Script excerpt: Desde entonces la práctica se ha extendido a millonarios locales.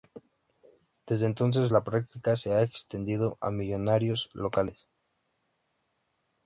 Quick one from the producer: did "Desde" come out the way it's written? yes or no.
yes